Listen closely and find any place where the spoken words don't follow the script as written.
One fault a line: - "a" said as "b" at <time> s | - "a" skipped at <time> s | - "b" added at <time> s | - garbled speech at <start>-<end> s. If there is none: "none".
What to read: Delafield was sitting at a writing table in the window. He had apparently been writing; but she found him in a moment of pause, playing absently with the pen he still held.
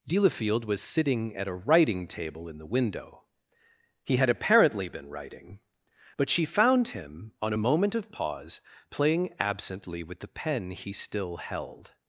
- "in" said as "on" at 7.4 s